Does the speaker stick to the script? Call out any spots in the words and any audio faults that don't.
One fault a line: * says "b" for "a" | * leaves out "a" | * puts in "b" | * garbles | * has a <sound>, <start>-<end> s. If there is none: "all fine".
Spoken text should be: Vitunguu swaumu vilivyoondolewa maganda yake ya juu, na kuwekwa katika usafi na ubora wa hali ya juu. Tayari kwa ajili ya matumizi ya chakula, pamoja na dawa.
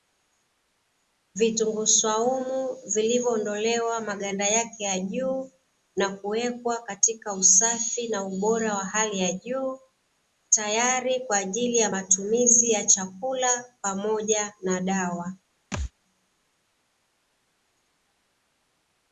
* has a thud, 15.7-15.9 s